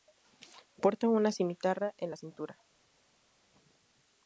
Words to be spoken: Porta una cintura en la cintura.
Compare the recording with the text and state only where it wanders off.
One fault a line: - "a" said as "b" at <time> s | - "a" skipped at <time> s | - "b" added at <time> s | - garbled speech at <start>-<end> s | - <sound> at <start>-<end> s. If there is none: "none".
- "cintura" said as "cimitarra" at 1.3 s